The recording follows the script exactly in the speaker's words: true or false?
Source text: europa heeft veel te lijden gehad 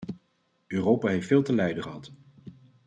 true